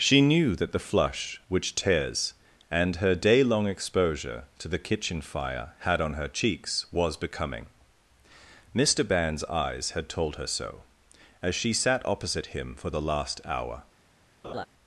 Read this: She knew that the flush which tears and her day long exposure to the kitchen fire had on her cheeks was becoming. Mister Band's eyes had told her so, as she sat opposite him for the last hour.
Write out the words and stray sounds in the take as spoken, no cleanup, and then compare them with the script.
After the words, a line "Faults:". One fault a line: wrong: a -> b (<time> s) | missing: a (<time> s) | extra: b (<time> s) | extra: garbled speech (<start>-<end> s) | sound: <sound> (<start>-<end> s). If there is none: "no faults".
She knew that the flush which tears and her day long exposure to the kitchen fire had on her cheeks was becoming. Mister Band's eyes had told her so, as she sat opposite him for the last hour.
Faults:
sound: laugh (14.4-14.7 s)